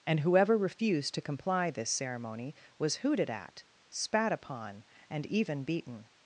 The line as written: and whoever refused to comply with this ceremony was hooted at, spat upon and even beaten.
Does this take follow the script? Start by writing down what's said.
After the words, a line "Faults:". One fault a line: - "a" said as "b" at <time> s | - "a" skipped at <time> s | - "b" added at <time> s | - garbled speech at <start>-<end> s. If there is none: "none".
and whoever refused to comply this ceremony was hooted at, spat upon and even beaten.
Faults:
- "with" skipped at 1.7 s